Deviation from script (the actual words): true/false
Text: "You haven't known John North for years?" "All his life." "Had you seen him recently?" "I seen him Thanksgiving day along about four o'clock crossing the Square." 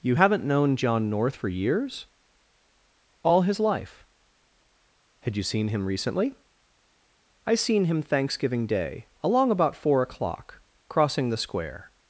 false